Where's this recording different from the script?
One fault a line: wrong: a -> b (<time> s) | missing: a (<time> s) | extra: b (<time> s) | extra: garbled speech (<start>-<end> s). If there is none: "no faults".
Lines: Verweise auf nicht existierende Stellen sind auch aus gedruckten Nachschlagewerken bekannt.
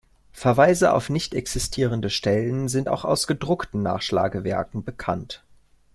no faults